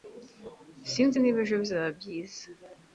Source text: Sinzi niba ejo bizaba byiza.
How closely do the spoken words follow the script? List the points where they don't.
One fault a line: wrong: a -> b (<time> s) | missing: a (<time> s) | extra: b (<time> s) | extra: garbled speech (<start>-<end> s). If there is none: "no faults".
no faults